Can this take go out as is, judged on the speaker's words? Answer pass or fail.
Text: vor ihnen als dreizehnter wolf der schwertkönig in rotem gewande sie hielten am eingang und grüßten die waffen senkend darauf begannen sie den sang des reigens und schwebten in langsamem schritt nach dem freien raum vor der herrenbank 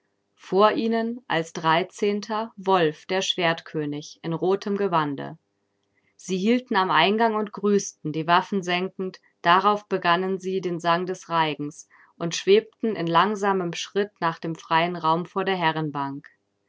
pass